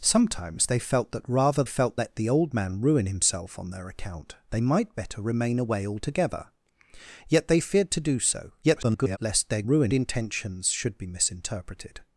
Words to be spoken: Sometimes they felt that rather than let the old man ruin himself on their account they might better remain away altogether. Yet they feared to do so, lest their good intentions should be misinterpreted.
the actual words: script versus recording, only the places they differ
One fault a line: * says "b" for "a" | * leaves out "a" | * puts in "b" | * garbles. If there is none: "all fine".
* says "felt" for "than"
* garbles
* says "ruin" for "good"